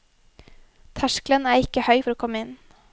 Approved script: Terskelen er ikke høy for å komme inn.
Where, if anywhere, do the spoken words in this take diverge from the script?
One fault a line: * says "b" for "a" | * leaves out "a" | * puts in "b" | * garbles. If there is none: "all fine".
all fine